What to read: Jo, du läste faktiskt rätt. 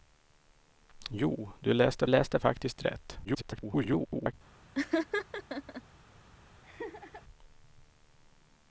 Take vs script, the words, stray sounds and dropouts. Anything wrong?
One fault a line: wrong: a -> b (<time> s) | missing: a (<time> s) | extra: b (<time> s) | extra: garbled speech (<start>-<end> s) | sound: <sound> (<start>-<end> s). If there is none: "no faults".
extra: läste (2.1 s)
extra: garbled speech (3.2-4.3 s)
sound: laugh (4.7-5.8 s)
sound: laugh (6.6-7.2 s)